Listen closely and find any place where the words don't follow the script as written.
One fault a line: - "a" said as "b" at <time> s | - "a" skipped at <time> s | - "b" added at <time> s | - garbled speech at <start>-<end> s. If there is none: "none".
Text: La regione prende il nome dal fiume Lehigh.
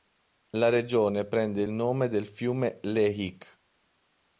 none